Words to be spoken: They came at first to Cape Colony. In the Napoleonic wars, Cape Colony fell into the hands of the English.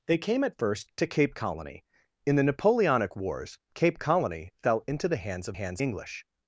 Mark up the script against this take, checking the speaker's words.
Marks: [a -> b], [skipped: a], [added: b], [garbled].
They came at first to Cape Colony. In the Napoleonic wars, Cape Colony fell into the hands of [the -> hands] English.